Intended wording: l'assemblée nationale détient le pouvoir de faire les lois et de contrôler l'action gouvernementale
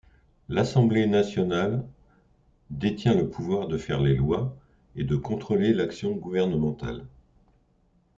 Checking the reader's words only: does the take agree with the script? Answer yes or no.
yes